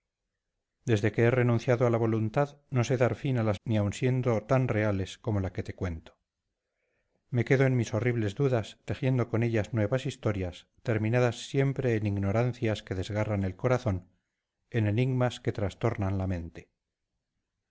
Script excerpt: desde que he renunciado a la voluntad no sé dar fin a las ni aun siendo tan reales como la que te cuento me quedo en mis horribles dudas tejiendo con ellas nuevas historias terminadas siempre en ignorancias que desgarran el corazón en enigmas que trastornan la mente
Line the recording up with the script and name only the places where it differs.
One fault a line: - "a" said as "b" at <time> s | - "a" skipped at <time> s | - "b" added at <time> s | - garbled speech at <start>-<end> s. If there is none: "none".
none